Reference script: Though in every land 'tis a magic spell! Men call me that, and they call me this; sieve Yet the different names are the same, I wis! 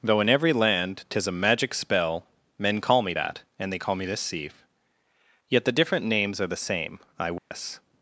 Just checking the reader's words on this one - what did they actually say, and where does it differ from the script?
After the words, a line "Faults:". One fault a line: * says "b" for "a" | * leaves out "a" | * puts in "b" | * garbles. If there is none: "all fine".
Though in every land 'tis a magic spell! Men call me that, and they call me this; sieve Yet the different names are the same, I wis!
Faults:
all fine